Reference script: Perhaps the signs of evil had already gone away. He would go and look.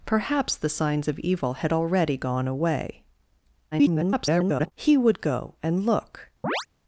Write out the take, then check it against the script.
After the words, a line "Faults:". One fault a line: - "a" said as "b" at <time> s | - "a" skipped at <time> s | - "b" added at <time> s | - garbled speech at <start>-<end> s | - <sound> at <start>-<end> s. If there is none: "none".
Perhaps the signs of evil had already gone away. [garbled] He would go and look.
Faults:
- garbled speech at 3.7-4.7 s
- chirp at 6.4-6.7 s